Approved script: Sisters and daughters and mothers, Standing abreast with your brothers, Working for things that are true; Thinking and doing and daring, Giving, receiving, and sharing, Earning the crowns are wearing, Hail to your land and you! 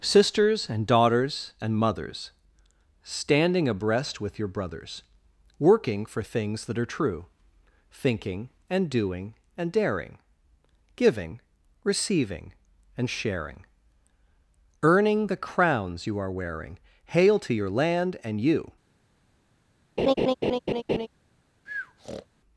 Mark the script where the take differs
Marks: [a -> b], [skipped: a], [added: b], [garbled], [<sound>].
Sisters and daughters and mothers, Standing abreast with your brothers, Working for things that are true; Thinking and doing and daring, Giving, receiving, and sharing, Earning the crowns [added: you] are wearing, Hail to your land and you! [laugh] [breath]